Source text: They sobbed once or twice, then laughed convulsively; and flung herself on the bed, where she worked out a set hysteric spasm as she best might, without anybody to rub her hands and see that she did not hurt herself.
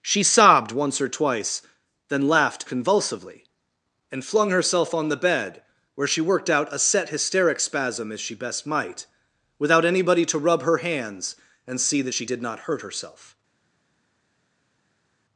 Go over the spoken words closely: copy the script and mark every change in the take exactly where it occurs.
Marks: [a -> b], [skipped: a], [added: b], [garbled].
[They -> She] sobbed once or twice, then laughed convulsively; and flung herself on the bed, where she worked out a set hysteric spasm as she best might, without anybody to rub her hands and see that she did not hurt herself.